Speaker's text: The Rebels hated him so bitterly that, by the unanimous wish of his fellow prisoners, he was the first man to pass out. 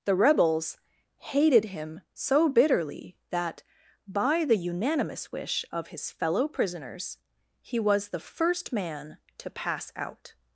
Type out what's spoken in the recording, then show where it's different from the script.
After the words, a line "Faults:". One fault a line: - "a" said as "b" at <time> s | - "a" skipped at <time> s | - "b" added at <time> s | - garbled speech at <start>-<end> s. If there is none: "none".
The Rebels hated him so bitterly that, by the unanimous wish of his fellow prisoners, he was the first man to pass out.
Faults:
none